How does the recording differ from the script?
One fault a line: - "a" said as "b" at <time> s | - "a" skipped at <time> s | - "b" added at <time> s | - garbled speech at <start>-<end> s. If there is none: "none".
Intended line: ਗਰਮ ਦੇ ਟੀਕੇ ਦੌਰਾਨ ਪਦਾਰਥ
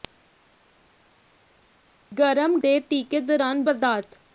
none